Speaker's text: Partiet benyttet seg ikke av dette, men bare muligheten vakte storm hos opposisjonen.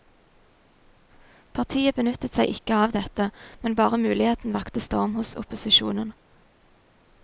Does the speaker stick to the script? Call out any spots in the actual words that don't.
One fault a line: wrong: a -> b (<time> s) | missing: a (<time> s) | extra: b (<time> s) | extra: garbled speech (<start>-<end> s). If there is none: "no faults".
no faults